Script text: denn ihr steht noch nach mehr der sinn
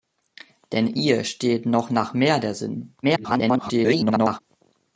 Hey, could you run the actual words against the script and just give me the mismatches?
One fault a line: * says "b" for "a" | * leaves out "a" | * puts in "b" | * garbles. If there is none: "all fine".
* garbles